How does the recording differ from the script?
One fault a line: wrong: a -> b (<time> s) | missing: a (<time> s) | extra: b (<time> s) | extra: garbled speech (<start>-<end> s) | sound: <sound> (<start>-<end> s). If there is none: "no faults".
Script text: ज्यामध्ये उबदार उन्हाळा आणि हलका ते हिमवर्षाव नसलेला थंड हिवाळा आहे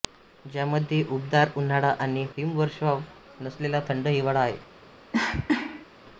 missing: हलका ते (2.2 s)
sound: cough (5.1-5.9 s)